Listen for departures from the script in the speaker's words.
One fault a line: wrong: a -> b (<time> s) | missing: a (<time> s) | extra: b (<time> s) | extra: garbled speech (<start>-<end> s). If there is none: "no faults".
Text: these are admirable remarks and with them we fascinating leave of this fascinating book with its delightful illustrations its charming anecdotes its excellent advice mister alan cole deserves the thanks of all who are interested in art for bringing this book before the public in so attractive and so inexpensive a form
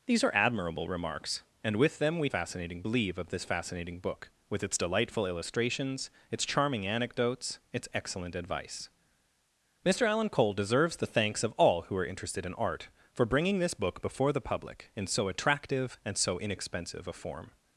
no faults